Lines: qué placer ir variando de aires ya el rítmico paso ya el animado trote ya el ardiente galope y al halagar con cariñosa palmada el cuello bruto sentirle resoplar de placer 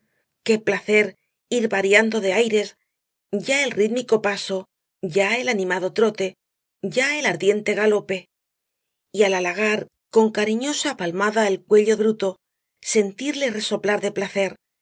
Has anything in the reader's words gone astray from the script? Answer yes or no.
no